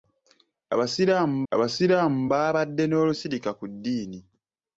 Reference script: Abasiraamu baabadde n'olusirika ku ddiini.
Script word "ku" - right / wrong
right